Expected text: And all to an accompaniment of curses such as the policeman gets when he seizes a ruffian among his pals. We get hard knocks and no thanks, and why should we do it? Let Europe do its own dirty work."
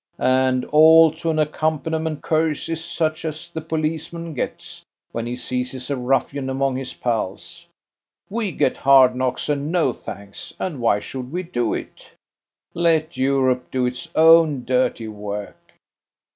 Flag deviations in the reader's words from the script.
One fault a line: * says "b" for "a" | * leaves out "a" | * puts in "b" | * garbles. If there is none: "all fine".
* leaves out "of"